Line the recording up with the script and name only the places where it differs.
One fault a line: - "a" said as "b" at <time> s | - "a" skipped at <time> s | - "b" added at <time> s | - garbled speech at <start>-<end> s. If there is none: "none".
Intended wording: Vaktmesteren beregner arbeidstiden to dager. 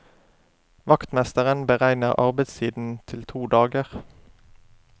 - "til" added at 3.1 s